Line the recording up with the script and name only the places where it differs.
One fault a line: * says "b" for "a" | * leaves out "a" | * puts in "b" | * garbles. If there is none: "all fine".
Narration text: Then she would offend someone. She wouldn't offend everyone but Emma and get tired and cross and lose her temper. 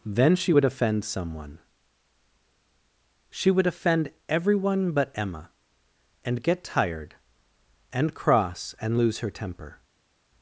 * says "would" for "wouldn't"